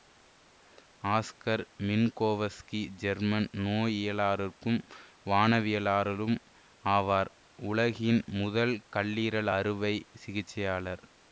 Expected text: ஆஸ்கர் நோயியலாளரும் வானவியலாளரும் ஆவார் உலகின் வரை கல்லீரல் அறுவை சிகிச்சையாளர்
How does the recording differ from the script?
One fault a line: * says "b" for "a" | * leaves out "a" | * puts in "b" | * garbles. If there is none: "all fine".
* puts in "மின்கோவஸ்கி ஜெர்மன்"
* says "முதல்" for "வரை"